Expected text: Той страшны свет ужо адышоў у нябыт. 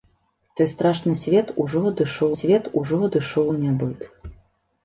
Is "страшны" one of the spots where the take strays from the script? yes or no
no